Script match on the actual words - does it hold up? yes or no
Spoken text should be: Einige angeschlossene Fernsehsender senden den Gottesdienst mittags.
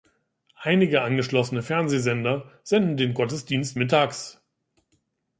yes